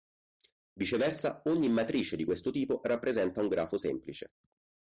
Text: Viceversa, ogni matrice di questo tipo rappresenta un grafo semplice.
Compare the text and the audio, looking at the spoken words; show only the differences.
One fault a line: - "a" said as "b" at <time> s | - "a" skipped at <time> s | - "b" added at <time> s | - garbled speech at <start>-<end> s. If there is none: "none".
none